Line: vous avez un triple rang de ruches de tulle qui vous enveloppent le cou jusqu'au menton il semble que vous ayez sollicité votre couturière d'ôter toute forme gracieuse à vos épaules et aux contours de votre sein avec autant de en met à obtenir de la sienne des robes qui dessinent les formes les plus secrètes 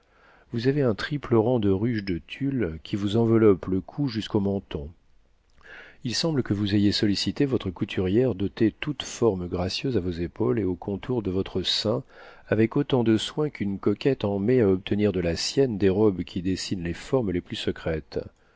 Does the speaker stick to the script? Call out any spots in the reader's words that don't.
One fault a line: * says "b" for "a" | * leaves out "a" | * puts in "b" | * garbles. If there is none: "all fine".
* puts in "soin qu'une coquette"